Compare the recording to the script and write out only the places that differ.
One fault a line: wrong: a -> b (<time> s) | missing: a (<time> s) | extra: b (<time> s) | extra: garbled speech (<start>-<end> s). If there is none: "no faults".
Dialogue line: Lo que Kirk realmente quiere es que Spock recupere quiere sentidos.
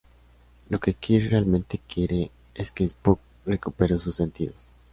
wrong: quiere -> sus (4.0 s)